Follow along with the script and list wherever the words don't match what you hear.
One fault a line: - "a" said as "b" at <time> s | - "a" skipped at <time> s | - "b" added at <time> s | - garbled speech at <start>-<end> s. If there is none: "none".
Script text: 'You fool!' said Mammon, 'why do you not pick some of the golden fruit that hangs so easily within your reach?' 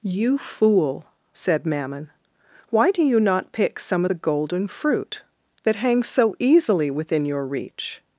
none